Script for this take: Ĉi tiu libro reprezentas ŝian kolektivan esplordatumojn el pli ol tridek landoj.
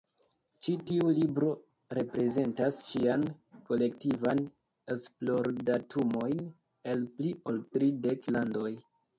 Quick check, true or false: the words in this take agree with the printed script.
true